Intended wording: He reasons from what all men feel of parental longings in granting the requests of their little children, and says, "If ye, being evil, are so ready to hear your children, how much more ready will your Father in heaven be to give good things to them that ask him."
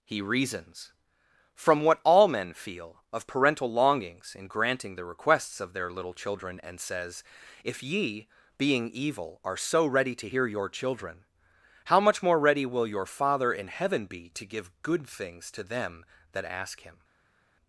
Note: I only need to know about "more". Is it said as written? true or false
true